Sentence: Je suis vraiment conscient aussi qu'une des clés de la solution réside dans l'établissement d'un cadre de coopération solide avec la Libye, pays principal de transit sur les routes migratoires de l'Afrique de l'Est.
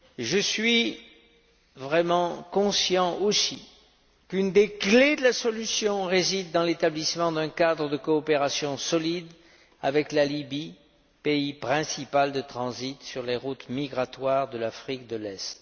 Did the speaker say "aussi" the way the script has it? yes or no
yes